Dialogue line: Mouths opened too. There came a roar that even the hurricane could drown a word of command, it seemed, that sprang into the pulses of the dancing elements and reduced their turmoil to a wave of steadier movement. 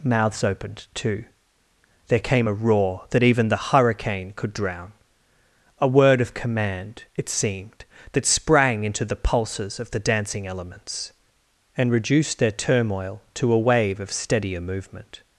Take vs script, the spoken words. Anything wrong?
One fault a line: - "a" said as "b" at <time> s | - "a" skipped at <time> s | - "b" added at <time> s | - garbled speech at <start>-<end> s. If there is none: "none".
none